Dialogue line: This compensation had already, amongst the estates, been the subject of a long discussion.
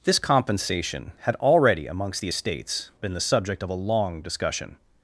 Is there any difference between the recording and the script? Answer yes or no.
no